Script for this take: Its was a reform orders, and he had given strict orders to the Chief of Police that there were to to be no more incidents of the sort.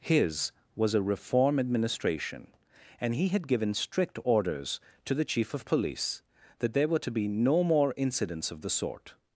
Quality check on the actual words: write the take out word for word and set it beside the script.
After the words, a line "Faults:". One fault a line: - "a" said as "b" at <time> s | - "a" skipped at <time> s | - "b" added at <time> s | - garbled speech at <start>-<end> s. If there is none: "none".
His was a reform administration, and he had given strict orders to the Chief of Police that there were to be no more incidents of the sort.
Faults:
- "Its" said as "His" at 0.0 s
- "orders" said as "administration" at 1.6 s
- "to" skipped at 7.1 s